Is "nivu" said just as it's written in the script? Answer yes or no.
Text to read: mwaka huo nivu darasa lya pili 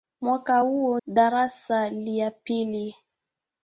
no